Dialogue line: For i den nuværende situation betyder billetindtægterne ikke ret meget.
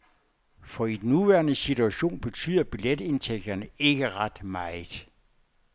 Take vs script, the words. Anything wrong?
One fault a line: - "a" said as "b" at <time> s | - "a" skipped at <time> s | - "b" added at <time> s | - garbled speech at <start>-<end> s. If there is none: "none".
none